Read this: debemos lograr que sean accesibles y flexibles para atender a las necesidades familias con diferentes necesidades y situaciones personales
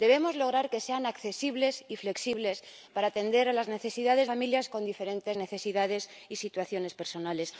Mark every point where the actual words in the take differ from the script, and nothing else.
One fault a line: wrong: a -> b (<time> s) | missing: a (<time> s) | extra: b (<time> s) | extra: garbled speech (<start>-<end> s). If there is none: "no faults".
no faults